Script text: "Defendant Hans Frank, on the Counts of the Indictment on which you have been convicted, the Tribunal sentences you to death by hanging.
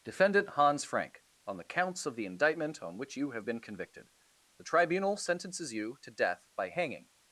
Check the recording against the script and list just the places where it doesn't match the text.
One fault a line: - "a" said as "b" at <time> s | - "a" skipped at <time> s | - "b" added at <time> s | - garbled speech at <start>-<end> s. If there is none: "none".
none